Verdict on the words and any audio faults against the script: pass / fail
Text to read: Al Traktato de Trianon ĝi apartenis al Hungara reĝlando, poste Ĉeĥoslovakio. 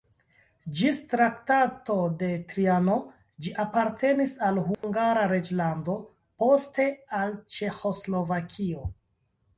fail